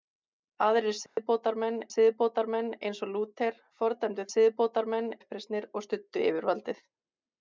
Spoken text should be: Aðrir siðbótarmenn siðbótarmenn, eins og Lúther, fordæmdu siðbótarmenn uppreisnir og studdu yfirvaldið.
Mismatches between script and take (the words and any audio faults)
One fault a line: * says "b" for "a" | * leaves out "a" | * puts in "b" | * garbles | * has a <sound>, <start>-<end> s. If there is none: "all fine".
* has a dropout, 1.1-1.2 s